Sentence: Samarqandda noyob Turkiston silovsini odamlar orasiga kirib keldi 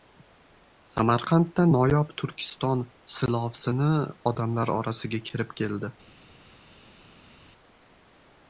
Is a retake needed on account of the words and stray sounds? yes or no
no